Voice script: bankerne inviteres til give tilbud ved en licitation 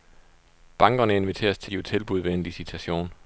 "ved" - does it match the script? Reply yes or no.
yes